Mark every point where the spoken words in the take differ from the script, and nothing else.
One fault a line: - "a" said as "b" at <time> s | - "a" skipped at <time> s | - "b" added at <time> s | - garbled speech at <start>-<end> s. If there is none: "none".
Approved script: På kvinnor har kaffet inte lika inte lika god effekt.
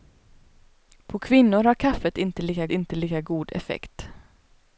none